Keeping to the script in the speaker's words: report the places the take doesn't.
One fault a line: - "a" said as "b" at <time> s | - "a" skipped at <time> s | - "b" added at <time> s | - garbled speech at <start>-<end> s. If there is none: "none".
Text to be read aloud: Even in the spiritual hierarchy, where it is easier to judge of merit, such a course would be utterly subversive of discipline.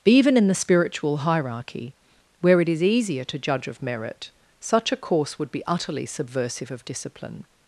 none